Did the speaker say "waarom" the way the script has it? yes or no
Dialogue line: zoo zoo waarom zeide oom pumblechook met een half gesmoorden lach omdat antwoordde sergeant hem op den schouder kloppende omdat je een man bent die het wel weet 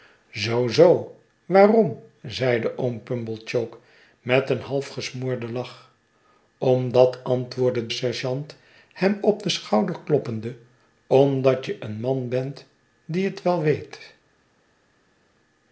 yes